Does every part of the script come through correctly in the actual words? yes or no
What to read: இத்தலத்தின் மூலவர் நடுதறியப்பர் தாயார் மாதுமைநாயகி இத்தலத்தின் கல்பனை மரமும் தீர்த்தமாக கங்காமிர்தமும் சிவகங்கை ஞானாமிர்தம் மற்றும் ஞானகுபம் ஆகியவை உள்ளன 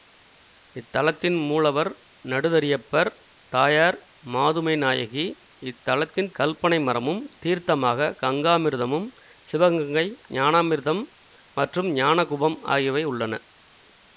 yes